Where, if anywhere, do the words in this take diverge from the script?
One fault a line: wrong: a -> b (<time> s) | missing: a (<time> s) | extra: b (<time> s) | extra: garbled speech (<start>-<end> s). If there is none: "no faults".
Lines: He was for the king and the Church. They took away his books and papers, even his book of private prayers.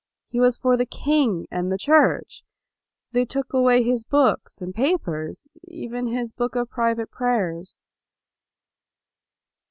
no faults